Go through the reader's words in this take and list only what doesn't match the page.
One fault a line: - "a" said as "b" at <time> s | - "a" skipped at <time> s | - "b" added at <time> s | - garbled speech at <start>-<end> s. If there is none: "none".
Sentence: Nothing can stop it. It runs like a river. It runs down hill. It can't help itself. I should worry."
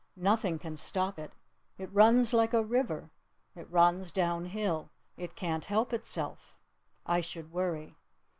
none